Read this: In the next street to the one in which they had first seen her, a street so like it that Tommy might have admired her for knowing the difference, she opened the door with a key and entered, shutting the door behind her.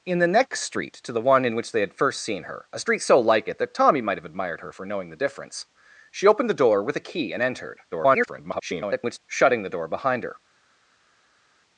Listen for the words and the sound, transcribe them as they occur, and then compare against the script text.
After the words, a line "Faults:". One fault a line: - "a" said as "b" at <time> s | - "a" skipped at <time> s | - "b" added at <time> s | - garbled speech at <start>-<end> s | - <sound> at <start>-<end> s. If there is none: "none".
In the next street to the one in which they had first seen her, a street so like it that Tommy might have admired her for knowing the difference, she opened the door with a key and entered, [garbled] shutting the door behind her.
Faults:
- garbled speech at 7.9-9.2 s